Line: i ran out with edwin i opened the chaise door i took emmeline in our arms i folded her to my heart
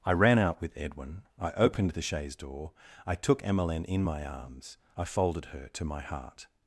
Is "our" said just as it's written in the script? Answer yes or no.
no